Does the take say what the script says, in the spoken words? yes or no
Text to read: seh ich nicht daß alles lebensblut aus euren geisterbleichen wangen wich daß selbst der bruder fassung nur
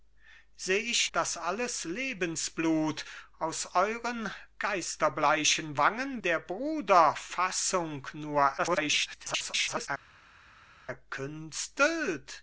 no